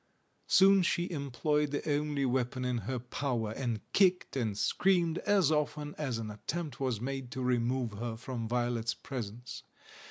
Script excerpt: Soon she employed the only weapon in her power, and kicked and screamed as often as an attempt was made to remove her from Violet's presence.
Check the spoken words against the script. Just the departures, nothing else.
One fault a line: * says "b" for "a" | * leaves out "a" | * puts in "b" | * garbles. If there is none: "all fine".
all fine